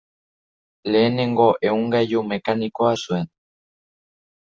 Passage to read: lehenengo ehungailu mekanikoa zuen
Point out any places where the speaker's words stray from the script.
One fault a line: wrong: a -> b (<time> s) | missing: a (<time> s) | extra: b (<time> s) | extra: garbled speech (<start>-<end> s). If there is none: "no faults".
no faults